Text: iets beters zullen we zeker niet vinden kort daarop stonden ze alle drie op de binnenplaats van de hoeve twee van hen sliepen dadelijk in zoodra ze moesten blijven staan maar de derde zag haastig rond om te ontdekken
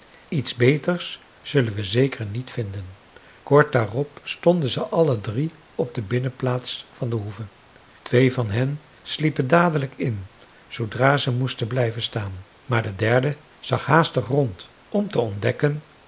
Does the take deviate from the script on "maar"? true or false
false